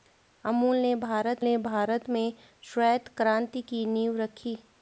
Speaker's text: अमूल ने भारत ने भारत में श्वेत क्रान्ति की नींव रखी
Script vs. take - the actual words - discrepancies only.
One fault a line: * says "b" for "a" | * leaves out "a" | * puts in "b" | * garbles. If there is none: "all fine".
all fine